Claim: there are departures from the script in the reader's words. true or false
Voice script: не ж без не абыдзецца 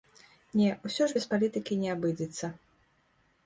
true